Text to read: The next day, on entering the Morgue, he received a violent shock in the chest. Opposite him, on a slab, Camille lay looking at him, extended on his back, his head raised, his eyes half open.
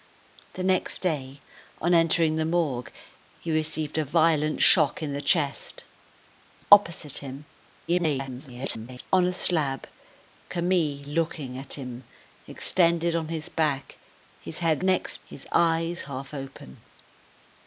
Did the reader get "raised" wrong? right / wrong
wrong